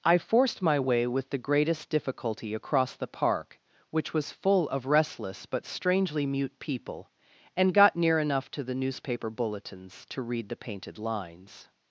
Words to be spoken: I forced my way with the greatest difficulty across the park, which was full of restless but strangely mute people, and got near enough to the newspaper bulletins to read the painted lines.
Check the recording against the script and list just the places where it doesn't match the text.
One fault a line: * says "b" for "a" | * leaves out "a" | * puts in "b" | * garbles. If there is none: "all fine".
all fine